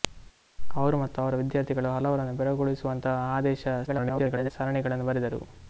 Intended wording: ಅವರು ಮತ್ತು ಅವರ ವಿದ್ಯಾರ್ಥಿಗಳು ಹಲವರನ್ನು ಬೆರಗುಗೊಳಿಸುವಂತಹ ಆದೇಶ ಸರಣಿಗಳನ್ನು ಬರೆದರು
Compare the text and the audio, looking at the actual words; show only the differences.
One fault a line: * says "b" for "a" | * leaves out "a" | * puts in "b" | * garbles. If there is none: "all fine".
* garbles